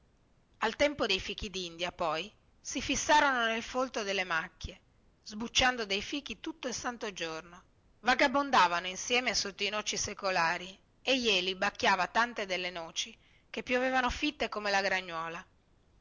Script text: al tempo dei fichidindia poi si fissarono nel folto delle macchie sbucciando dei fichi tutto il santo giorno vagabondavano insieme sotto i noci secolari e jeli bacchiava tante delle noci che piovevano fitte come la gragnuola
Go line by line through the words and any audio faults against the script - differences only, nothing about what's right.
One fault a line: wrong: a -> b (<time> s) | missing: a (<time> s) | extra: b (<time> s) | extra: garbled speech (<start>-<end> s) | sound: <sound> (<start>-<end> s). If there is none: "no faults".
no faults